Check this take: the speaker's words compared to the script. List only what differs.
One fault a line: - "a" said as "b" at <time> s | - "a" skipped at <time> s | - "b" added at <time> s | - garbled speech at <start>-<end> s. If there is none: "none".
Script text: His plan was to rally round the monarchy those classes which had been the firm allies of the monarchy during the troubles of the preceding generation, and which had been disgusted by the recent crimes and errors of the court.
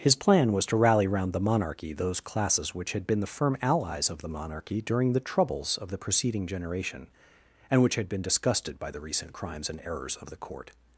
none